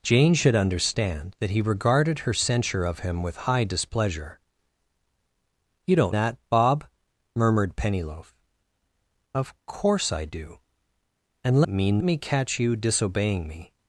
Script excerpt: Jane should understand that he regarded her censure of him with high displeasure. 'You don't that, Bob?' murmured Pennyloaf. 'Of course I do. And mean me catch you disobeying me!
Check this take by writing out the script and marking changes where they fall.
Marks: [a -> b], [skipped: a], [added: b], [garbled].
Jane should understand that he regarded her censure of him with high displeasure. 'You don't that, Bob?' murmured Pennyloaf. 'Of course I do. And mean me catch you disobeying me!